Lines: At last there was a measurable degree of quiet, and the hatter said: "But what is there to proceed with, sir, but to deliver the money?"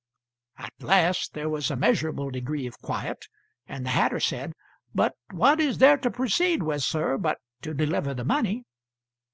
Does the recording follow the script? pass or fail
pass